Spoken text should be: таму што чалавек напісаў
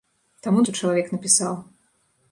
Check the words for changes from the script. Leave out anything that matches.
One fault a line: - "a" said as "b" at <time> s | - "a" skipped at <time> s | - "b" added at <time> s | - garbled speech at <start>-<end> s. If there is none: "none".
none